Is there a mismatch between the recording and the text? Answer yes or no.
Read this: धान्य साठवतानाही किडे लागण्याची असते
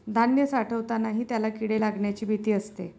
yes